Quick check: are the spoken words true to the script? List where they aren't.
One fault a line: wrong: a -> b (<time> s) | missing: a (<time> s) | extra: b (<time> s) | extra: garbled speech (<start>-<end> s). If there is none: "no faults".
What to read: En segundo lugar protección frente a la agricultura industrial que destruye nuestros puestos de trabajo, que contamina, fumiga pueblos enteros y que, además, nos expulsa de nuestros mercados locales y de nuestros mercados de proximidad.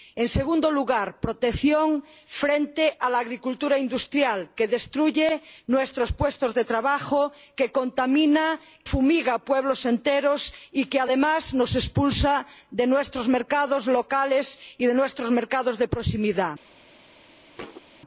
no faults